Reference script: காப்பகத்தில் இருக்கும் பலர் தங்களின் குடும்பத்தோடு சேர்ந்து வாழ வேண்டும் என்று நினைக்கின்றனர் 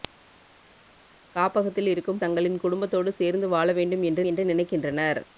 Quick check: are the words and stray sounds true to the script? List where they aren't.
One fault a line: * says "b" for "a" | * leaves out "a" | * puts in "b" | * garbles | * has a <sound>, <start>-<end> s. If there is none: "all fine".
* leaves out "பலர்"
* puts in "என்று"